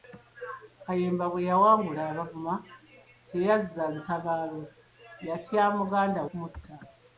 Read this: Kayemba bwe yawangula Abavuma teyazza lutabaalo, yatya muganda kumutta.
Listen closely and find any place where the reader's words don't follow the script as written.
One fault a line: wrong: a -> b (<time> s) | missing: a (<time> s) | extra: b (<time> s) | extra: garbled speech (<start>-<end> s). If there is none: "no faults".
no faults